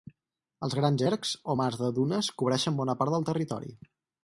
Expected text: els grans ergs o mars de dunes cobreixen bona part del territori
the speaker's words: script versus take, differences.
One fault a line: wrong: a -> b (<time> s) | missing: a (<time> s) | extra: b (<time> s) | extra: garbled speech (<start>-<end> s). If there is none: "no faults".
no faults